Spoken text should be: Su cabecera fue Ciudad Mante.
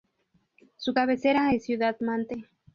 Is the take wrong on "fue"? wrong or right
wrong